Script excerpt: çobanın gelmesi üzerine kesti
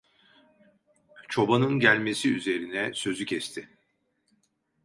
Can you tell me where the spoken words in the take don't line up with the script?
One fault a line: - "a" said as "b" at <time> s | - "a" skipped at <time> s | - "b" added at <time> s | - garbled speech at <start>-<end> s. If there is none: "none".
- "sözü" added at 2.9 s